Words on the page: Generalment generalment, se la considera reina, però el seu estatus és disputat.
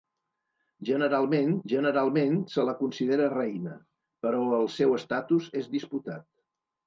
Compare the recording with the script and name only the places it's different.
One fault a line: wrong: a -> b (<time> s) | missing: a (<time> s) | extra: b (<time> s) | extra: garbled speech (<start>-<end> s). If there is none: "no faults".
no faults